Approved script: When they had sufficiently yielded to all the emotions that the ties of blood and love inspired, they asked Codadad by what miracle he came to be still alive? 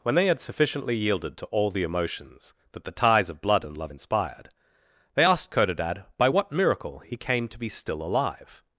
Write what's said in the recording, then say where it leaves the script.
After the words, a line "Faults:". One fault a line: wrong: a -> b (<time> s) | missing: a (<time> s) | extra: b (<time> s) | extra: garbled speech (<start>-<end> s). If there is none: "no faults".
When they had sufficiently yielded to all the emotions that the ties of blood and love inspired, they asked Codadad by what miracle he came to be still alive?
Faults:
no faults